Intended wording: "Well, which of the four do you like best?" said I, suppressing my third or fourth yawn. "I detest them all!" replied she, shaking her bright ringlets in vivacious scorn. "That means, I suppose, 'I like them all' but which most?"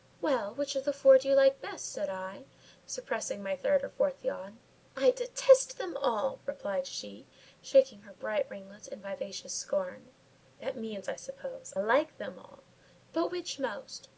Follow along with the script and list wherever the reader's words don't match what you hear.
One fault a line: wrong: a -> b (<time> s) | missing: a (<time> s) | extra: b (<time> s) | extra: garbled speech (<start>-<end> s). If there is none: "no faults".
missing: I (11.8 s)